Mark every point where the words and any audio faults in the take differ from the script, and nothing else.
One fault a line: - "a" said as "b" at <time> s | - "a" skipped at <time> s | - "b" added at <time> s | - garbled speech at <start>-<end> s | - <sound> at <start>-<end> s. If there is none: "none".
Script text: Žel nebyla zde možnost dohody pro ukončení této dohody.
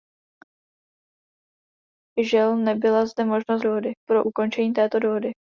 none